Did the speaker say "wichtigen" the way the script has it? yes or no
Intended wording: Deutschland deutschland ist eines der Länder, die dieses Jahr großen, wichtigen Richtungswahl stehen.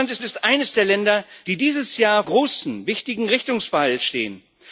yes